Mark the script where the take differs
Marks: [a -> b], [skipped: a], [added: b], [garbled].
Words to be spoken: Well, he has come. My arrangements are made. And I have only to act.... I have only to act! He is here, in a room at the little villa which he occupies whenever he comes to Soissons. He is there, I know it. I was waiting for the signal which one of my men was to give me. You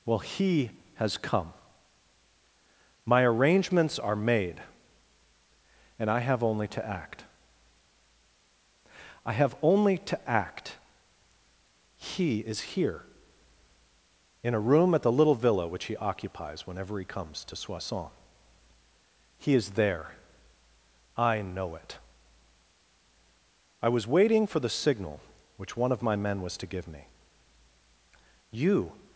Well, he has come. My arrangements are made. And I have only to act.... I have only to act! He is here, in a room at the little villa which he occupies whenever he comes to Soissons. He is there, I know it. I was waiting for the signal which one of my men was to give me. You